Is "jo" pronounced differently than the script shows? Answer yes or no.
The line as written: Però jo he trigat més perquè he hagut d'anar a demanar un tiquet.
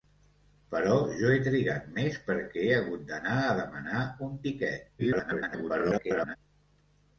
no